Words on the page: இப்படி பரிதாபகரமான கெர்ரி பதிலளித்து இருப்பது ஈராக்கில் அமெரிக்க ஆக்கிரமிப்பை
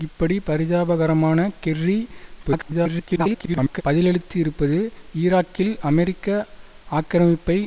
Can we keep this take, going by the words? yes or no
no